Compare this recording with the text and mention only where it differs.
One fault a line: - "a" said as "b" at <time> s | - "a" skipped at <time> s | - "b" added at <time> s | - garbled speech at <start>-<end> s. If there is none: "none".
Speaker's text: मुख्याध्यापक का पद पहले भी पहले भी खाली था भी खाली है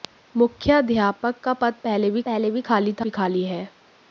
none